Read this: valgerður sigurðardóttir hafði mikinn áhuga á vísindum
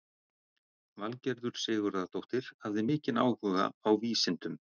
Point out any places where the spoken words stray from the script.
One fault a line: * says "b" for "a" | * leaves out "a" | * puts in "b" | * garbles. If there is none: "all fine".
all fine